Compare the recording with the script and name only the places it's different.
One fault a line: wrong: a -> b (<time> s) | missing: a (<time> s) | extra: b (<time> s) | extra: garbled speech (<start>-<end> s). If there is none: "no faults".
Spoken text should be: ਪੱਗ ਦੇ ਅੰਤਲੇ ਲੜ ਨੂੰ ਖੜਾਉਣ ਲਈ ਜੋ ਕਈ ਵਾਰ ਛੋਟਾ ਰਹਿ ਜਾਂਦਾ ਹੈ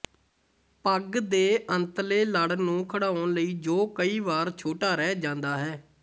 no faults